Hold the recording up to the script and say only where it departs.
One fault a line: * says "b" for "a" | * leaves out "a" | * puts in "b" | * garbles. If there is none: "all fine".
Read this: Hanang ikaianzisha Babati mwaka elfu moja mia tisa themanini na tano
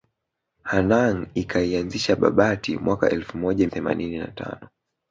* leaves out "mia tisa"